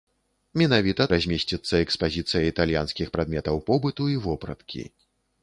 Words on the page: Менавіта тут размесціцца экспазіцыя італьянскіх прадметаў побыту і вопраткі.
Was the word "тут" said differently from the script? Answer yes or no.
yes